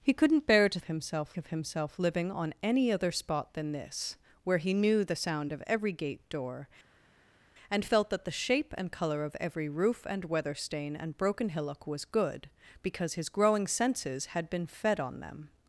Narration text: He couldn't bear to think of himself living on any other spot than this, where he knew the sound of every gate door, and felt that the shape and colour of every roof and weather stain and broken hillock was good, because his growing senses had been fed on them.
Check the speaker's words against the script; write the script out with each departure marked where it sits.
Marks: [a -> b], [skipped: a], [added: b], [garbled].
He couldn't bear to [think -> himself] of himself living on any other spot than this, where he knew the sound of every gate door, and felt that the shape and colour of every roof and weather stain and broken hillock was good, because his growing senses had been fed on them.